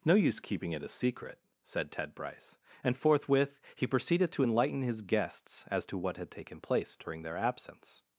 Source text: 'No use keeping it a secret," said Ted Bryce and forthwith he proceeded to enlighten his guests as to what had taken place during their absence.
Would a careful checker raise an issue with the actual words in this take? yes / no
no